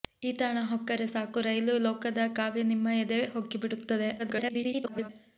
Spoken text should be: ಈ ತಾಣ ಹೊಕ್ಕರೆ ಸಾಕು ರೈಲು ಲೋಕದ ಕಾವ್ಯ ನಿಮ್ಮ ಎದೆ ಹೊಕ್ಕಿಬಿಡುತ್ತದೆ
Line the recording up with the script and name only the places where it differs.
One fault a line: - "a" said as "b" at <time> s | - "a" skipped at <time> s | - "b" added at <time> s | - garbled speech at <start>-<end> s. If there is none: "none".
- garbled speech at 4.2-5.1 s